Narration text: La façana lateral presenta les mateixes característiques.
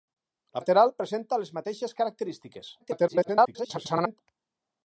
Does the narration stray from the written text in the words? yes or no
yes